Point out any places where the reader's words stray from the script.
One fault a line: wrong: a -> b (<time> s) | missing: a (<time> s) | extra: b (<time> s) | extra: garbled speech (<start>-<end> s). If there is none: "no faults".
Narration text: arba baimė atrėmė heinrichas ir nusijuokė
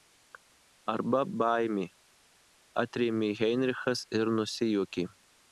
no faults